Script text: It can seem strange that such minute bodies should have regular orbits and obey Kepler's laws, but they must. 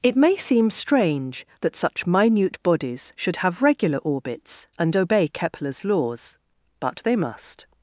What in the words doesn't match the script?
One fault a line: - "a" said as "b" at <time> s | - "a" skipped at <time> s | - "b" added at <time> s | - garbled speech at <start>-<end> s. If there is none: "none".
- "can" said as "may" at 0.1 s